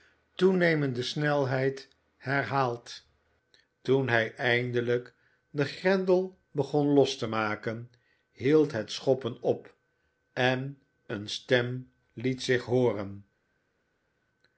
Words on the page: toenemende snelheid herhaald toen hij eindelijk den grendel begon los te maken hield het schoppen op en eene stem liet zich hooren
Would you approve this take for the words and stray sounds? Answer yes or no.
yes